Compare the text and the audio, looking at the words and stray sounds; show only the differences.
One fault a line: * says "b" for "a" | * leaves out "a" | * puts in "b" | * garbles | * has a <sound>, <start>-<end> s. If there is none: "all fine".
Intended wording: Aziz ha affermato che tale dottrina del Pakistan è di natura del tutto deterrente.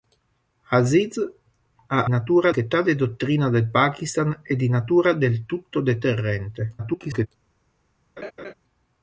* says "natura" for "affermato"
* garbles
* has a laugh, 8.2-8.5 s